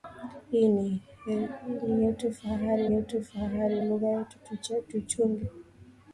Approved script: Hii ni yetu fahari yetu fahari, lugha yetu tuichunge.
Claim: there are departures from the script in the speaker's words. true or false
false